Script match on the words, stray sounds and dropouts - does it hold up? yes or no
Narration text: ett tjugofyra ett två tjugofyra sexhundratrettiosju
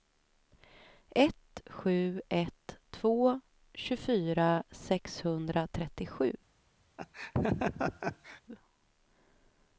no